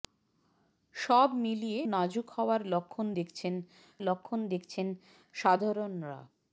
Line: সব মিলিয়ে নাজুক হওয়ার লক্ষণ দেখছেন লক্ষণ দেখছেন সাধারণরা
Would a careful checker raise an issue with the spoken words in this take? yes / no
no